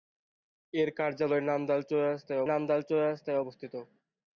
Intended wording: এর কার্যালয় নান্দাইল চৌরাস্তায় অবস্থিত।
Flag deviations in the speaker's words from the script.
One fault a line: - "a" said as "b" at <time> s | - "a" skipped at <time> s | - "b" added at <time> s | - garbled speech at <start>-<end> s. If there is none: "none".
- "নান্দাইল চৌরাস্তায়" added at 2.5 s